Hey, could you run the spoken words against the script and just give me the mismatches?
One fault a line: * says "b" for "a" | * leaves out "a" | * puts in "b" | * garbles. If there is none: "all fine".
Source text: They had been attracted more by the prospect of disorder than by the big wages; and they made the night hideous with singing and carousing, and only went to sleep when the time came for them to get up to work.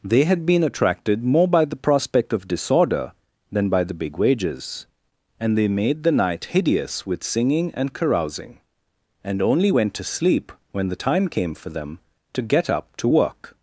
all fine